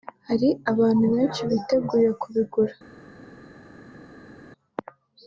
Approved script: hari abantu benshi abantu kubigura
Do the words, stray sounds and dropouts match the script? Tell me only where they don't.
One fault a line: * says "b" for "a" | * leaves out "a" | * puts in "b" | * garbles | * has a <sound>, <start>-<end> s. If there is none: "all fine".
* says "biteguye" for "abantu"